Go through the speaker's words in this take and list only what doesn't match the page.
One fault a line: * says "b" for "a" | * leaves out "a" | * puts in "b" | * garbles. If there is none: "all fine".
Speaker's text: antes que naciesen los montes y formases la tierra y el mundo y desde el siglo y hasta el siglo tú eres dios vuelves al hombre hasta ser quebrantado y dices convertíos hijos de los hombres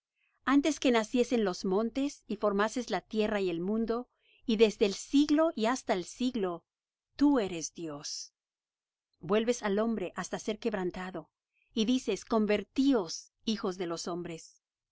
all fine